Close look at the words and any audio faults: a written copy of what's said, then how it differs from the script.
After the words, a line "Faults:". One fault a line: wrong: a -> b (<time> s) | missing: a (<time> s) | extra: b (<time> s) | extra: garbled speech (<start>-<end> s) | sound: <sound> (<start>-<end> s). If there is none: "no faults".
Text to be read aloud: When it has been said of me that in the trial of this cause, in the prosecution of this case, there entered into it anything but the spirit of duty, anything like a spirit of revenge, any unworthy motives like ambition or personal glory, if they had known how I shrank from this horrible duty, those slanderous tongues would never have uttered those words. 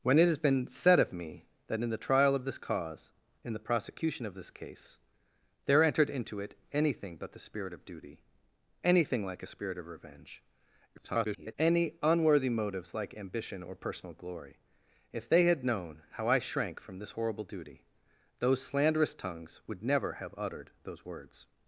When it has been said of me that in the trial of this cause, in the prosecution of this case, there entered into it anything but the spirit of duty, anything like a spirit of revenge, [garbled] any unworthy motives like ambition or personal glory, if they had known how I shrank from this horrible duty, those slanderous tongues would never have uttered those words.
Faults:
extra: garbled speech (11.0-11.5 s)